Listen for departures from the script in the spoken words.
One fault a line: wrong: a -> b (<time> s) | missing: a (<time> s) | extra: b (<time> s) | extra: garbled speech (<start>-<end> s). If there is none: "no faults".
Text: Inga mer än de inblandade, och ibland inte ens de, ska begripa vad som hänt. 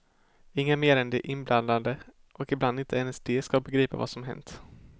no faults